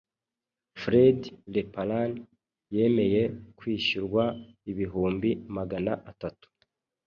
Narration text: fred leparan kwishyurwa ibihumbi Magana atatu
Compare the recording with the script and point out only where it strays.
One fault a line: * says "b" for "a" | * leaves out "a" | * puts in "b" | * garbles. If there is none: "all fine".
* puts in "yemeye"